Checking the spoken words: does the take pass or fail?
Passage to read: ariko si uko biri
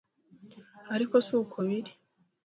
pass